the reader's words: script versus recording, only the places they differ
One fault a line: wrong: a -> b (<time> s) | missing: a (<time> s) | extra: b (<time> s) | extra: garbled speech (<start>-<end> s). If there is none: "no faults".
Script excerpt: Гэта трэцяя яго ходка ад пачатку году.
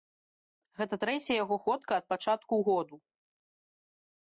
no faults